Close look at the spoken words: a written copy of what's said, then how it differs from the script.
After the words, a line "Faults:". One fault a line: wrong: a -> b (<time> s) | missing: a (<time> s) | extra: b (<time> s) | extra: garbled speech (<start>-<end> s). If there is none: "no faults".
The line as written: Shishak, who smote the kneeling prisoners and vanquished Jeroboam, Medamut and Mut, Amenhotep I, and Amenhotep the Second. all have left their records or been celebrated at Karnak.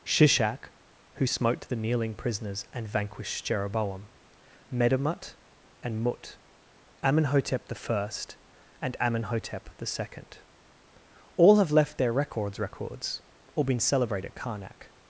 Shishak, who smote the kneeling prisoners and vanquished Jeroboam, Medamut and Mut, Amenhotep I, and Amenhotep the Second. all have left their records records or been celebrated at Karnak.
Faults:
extra: records (12.6 s)